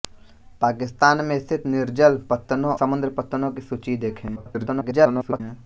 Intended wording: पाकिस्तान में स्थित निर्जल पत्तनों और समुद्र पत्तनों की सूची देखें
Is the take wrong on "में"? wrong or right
right